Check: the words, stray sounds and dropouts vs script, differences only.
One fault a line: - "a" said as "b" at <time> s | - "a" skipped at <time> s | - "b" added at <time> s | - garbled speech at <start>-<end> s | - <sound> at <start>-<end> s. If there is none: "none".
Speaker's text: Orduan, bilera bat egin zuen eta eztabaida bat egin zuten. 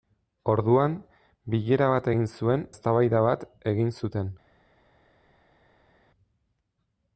- "eta" skipped at 2.6 s